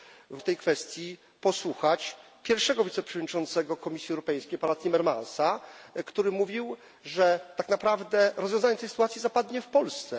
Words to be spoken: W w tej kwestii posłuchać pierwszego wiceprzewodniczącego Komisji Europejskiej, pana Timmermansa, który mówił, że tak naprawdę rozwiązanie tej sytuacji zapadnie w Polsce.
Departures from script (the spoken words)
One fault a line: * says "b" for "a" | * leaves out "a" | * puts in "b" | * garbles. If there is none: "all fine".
all fine